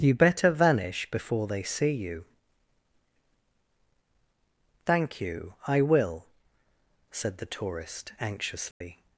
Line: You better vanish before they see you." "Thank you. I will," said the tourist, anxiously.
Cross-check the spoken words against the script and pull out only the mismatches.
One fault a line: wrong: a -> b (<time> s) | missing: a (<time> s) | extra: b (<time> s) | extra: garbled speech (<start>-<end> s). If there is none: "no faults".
no faults